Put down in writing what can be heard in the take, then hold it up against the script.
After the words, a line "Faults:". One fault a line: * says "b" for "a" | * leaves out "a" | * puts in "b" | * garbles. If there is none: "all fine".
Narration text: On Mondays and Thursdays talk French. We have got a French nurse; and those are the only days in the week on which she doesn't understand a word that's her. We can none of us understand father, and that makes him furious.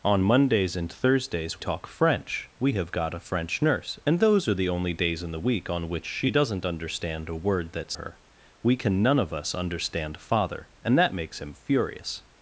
On Mondays and Thursdays talk French. We have got a French nurse; and those are the only days in the week on which she doesn't understand a word that's her. We can none of us understand father, and that makes him furious.
Faults:
all fine